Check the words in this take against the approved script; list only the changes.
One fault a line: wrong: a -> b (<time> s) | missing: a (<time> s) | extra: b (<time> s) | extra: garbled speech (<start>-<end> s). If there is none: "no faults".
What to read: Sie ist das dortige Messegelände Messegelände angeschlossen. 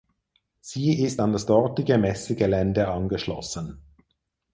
extra: an (1.2 s)
missing: Messegelände (2.9 s)